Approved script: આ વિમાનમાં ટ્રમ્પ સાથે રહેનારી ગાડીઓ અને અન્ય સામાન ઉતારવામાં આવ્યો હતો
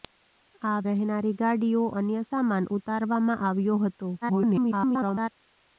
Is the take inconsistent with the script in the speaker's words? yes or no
yes